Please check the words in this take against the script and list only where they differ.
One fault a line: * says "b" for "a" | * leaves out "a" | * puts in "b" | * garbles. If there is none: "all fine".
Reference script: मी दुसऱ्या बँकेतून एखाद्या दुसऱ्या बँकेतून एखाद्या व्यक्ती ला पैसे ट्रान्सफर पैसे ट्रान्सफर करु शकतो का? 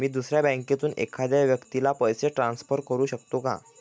* leaves out "दुसऱ्या बँकेतून एखाद्या"
* leaves out "पैसे ट्रान्सफर"